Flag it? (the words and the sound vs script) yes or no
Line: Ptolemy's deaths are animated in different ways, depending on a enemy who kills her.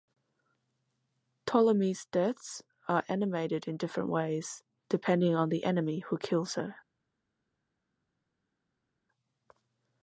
yes